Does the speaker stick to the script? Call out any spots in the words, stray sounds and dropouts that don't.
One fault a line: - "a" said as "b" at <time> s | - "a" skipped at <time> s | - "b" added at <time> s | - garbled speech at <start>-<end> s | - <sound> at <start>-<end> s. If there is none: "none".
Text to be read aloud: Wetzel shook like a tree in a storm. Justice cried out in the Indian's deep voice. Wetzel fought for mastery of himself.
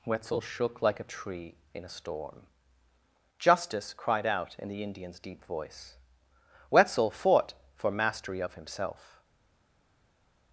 none